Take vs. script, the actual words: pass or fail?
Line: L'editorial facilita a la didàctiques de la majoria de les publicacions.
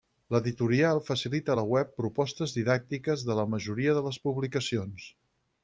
fail